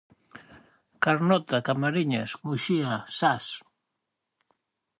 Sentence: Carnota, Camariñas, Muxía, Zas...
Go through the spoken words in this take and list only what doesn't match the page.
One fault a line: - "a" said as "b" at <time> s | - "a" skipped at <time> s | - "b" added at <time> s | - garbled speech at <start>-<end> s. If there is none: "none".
none